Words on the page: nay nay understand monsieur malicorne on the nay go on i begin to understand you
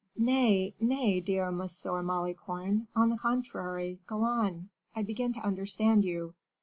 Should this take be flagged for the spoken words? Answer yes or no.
yes